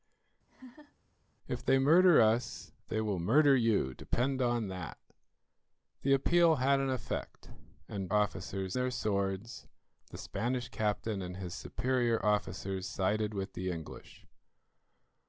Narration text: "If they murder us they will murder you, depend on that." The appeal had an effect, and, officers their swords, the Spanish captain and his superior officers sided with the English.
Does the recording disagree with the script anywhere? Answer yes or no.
no